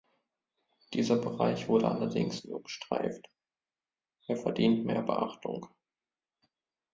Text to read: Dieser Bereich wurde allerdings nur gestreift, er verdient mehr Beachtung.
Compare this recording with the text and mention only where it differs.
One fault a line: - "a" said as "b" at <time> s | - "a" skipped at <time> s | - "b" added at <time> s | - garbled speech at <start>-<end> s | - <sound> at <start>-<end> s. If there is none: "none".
none